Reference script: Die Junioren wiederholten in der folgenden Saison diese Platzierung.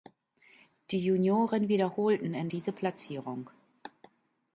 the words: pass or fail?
fail